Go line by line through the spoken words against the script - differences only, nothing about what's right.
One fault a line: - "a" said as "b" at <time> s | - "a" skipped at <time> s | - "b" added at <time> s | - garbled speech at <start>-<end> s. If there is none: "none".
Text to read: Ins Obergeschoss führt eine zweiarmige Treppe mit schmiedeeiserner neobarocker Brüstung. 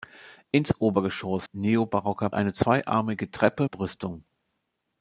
- "führt" said as "neobarocker" at 1.5 s
- "mit schmiedeeiserner neobarocker" skipped at 3.7 s